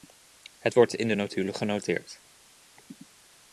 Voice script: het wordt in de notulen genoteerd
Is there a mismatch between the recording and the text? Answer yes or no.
no